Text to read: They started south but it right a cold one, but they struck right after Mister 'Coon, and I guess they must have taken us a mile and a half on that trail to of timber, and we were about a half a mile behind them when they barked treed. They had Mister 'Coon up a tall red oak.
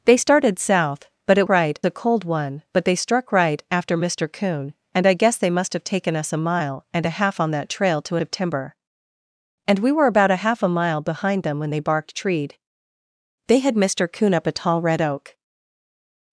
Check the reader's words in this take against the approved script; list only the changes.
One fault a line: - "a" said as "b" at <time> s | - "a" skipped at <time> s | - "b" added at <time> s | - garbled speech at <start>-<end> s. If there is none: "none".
none